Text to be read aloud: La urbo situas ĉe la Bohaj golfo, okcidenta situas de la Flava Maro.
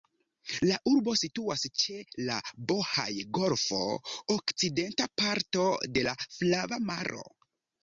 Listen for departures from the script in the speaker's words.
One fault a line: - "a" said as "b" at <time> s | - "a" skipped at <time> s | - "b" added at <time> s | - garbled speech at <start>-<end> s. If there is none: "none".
- "situas" said as "parto" at 5.2 s